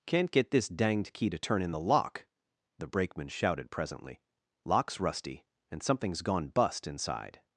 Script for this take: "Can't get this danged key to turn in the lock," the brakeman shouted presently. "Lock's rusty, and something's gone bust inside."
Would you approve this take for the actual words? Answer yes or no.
yes